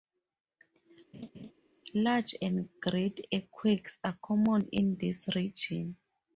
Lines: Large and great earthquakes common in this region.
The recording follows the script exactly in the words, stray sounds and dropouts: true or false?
false